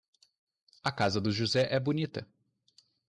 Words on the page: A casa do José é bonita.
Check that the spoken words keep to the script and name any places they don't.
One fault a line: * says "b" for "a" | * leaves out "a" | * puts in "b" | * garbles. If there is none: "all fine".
all fine